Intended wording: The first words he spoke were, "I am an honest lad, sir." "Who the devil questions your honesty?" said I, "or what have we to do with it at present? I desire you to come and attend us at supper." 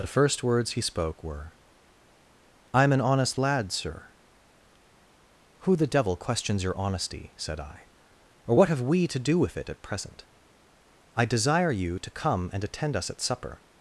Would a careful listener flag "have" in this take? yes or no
no